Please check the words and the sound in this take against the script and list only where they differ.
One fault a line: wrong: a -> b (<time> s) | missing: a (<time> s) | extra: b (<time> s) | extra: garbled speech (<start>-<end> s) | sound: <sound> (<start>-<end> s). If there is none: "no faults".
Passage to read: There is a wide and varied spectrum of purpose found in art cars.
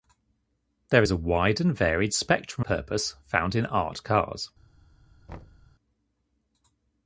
missing: of (2.7 s)
sound: thud (5.3-5.7 s)